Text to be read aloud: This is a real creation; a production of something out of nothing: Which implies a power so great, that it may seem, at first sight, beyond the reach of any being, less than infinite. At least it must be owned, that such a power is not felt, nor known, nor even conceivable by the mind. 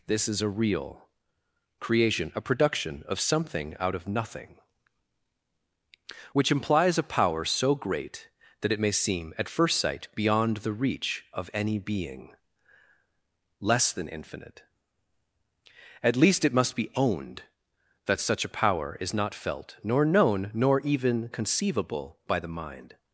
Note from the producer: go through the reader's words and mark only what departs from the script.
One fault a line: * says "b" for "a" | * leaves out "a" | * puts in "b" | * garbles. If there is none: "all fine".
all fine